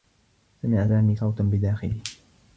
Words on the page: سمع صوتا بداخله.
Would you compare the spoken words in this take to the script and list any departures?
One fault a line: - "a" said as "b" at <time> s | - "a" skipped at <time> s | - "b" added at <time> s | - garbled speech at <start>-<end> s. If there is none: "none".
- "سامي" added at 0.9 s